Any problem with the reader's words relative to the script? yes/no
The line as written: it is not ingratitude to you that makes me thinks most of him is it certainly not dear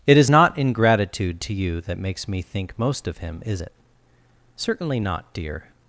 yes